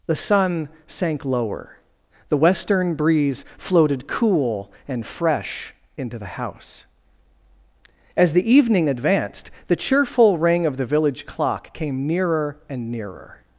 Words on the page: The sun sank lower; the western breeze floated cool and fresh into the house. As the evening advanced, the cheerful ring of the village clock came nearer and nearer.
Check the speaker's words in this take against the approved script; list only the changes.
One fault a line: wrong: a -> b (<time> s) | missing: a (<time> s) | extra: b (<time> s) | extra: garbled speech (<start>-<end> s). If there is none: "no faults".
no faults